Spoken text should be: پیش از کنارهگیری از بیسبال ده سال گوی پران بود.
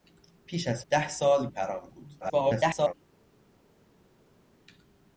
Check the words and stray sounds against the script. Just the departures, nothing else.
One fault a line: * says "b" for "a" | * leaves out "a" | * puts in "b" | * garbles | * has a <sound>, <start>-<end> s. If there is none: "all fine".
* leaves out "کنارهگیری از بیسبال"
* leaves out "گوی"
* garbles